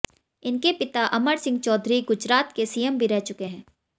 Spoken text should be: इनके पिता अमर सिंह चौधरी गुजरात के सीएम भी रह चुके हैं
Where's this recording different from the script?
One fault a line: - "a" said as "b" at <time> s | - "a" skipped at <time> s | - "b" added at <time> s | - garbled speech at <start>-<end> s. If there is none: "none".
none